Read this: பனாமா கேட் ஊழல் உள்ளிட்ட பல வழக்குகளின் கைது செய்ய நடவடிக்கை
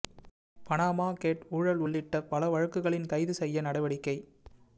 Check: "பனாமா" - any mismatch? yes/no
no